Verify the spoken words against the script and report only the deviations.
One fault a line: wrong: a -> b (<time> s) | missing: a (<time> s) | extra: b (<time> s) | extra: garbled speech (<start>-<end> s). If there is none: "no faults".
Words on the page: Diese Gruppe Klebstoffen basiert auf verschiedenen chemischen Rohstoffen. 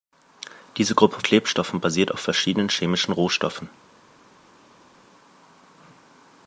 no faults